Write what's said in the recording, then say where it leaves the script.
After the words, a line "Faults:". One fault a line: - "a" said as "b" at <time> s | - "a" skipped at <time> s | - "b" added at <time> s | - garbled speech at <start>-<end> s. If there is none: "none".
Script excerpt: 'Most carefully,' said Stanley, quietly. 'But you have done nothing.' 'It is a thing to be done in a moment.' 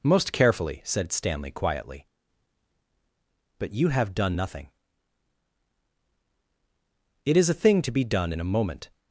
'Most carefully,' said Stanley, quietly. 'But you have done nothing.' 'It is a thing to be done in a moment.'
Faults:
none